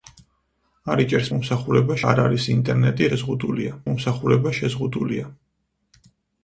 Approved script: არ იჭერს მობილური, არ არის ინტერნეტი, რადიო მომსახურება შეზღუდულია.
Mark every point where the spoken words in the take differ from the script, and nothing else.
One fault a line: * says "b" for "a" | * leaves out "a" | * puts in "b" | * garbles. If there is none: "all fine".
* says "მომსახურება" for "მობილური"
* says "შეზღუდულია" for "რადიო"